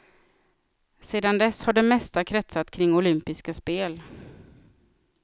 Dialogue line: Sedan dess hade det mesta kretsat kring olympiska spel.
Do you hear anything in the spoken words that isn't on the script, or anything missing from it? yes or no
yes